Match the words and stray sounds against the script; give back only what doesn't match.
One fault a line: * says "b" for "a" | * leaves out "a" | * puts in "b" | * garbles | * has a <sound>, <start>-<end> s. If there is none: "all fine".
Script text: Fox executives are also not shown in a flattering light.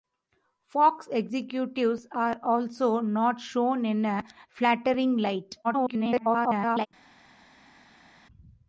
* garbles